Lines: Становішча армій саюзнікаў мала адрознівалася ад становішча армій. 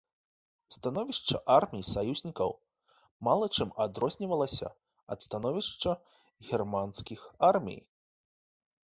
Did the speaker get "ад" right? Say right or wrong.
right